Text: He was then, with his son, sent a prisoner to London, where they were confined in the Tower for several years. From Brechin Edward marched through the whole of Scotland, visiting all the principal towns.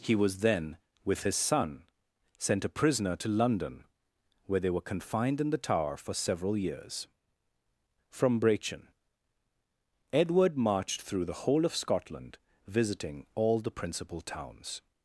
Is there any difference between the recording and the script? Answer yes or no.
no